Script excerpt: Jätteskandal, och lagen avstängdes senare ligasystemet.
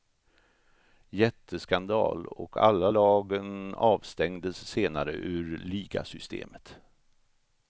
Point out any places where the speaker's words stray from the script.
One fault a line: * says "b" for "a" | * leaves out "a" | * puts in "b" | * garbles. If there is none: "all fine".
* puts in "alla"
* puts in "ur"